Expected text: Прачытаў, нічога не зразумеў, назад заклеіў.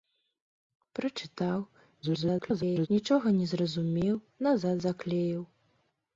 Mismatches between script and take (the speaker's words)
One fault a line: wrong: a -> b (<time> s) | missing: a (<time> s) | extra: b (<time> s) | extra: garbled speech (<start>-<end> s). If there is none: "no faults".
extra: garbled speech (2.0-2.9 s)